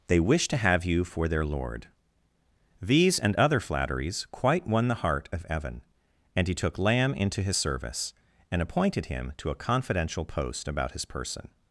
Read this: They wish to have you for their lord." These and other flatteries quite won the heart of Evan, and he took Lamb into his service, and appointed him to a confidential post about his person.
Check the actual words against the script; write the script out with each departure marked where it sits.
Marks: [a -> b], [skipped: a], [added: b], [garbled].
They wish to have you for their lord." These and other flatteries quite won the heart of Evan, and he took Lamb into his service, and appointed him to a confidential post about his person.